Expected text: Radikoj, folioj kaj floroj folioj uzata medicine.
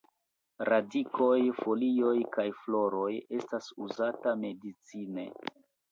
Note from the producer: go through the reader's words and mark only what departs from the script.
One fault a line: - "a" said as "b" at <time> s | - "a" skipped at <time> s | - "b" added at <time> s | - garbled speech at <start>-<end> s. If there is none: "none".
- "folioj" said as "estas" at 3.4 s